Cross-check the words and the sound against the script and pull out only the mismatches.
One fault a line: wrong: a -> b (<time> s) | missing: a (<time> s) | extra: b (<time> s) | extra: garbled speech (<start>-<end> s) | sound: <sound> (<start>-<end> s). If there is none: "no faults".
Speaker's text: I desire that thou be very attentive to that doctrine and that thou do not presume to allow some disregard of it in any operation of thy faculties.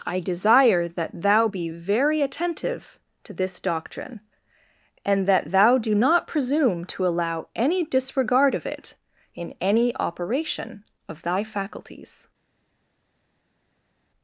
wrong: that -> this (3.3 s)
wrong: some -> any (7.6 s)